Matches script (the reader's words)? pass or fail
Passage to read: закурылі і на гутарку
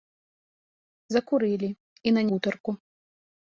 pass